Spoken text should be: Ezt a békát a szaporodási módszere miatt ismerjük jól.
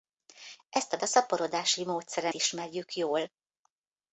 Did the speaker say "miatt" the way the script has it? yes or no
no